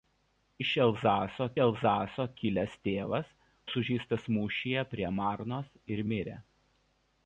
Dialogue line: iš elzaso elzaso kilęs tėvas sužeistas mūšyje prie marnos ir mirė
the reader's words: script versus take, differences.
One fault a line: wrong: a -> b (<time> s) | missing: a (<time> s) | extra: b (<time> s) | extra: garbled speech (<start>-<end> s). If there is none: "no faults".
no faults